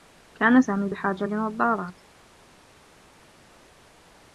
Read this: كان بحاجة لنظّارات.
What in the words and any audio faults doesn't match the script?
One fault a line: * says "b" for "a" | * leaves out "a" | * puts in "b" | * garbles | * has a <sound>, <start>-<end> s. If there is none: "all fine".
* puts in "سامي"